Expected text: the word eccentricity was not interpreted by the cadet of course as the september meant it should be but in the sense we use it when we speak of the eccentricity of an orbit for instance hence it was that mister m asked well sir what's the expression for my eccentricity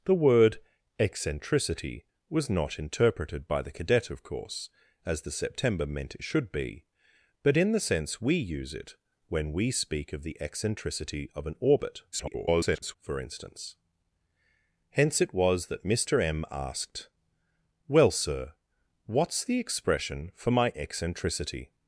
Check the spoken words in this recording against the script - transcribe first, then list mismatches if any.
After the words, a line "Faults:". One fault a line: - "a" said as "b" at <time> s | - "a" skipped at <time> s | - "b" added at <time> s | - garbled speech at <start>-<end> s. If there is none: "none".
the word eccentricity was not interpreted by the cadet of course as the september meant it should be but in the sense we use it when we speak of the eccentricity of an orbit [garbled] for instance hence it was that mister m asked well sir what's the expression for my eccentricity
Faults:
- garbled speech at 12.1-13.0 s